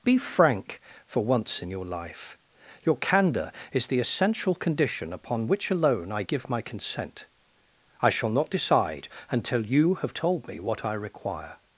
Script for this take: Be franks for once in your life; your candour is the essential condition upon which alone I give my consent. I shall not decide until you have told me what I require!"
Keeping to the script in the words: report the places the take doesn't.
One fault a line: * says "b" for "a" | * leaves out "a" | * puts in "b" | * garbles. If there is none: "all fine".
* says "frank" for "franks"